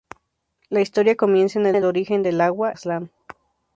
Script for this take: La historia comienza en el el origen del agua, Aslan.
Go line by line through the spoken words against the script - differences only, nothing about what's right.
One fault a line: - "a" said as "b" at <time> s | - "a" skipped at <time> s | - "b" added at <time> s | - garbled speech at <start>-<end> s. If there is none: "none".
none